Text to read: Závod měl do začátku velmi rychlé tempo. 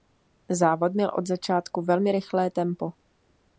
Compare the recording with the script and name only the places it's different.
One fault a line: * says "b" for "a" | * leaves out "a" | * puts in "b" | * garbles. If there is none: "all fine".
* says "od" for "do"